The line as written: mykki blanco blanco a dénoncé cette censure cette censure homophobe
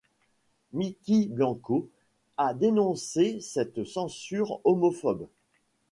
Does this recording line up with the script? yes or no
no